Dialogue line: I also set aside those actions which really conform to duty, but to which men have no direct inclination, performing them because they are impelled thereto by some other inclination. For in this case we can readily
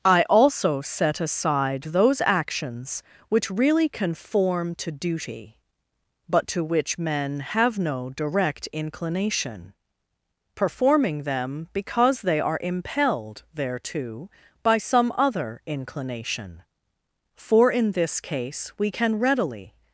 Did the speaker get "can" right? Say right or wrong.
right